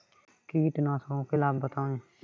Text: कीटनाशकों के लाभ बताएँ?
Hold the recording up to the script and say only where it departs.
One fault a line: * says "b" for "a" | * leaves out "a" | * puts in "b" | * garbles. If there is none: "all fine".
all fine